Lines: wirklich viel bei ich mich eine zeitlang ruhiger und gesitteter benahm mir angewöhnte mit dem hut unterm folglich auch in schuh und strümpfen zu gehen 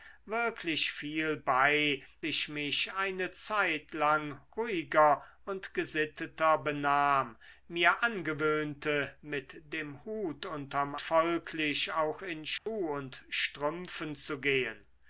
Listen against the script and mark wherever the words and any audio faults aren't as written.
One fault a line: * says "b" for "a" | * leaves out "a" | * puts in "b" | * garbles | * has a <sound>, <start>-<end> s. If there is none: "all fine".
* has a dropout, 12.6-12.7 s